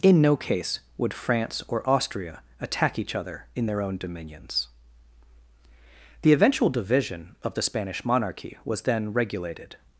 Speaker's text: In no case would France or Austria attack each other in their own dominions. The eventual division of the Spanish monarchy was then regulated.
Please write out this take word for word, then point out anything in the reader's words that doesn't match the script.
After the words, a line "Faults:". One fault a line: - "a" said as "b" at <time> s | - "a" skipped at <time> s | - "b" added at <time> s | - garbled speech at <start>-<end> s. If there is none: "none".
In no case would France or Austria attack each other in their own dominions. The eventual division of the Spanish monarchy was then regulated.
Faults:
none